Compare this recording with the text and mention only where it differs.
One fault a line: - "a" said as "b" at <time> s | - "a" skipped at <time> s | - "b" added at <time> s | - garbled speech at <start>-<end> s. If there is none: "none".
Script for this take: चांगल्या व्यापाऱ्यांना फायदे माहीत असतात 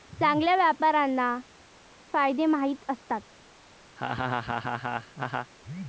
none